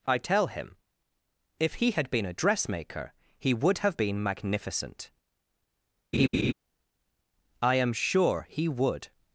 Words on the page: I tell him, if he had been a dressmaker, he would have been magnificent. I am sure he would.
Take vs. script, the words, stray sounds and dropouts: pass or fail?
fail